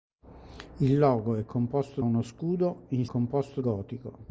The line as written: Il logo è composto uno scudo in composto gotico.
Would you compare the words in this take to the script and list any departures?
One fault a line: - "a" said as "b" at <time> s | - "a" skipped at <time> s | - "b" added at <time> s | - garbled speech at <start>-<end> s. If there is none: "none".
none